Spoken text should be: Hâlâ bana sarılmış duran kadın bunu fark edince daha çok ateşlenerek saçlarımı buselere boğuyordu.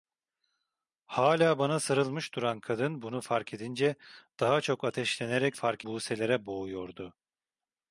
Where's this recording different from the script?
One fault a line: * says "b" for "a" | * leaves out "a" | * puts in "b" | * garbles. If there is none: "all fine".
* says "fark" for "saçlarımı"